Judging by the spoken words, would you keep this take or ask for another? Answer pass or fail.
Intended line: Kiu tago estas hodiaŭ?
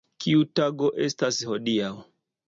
pass